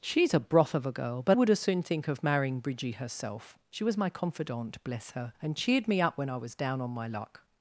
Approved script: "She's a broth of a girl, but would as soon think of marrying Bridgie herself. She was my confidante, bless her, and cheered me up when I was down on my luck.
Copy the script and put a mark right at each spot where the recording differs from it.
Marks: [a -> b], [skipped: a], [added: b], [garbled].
"She's a broth of a girl, but would as soon think of marrying Bridgie herself. She was my confidante, bless her, and cheered me up when I was down on my luck.